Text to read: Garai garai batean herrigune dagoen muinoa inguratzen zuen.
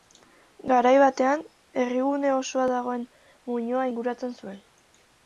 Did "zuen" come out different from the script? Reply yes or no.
no